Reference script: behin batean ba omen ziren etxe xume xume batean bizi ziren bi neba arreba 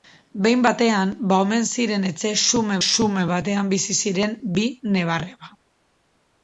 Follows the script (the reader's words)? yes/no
yes